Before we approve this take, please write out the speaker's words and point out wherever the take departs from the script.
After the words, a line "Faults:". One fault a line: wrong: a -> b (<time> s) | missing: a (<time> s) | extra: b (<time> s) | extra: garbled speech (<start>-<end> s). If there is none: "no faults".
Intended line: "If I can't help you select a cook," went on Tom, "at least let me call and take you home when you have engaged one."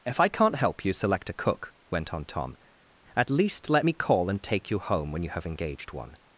"If I can't help you select a cook," went on Tom, "at least let me call and take you home when you have engaged one."
Faults:
no faults